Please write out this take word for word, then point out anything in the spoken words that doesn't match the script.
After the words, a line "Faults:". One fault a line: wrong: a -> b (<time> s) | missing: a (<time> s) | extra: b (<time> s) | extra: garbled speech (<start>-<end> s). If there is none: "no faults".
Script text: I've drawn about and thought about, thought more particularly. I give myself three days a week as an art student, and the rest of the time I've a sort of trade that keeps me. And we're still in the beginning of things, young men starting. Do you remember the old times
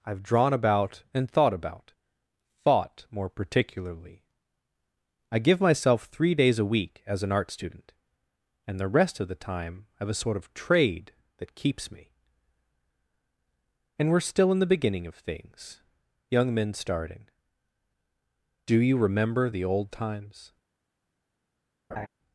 I've drawn about and thought about, thought more particularly. I give myself three days a week as an art student, and the rest of the time I've a sort of trade that keeps me. And we're still in the beginning of things, young men starting. Do you remember the old times
Faults:
no faults